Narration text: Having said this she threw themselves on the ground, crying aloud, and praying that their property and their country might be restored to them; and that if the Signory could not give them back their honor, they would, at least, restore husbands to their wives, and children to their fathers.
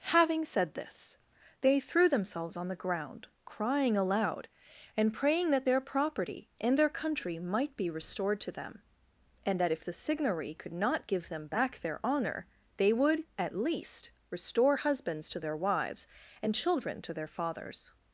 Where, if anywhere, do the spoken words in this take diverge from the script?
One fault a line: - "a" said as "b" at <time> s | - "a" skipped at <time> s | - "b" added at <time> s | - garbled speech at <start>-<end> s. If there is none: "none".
- "she" said as "they" at 1.6 s